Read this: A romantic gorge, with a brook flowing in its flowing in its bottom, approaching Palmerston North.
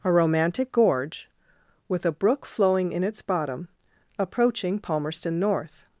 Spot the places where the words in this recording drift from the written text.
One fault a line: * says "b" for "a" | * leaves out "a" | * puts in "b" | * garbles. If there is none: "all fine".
* leaves out "flowing in its"